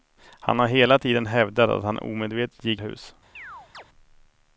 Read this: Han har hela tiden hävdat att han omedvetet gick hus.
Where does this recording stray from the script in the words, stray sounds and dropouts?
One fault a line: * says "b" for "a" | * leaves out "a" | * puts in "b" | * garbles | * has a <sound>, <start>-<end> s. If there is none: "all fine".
* has a chirp, 3.3-3.8 s